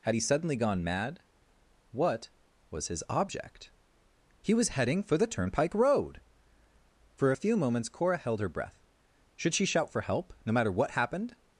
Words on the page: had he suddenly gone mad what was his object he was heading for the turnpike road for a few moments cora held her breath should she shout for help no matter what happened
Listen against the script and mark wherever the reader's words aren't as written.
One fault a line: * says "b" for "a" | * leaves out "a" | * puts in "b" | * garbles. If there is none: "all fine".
all fine